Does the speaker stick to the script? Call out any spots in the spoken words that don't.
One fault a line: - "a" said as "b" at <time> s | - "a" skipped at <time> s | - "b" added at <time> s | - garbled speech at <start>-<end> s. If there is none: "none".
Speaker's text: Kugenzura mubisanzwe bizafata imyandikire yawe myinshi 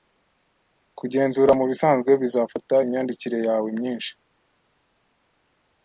none